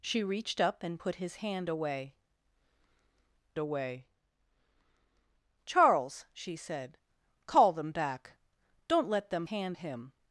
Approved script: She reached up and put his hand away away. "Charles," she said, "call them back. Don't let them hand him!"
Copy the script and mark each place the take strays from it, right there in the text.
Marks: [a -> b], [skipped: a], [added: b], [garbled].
She reached up and put his hand away away. "Charles," she said, "call them back. Don't let them hand him!"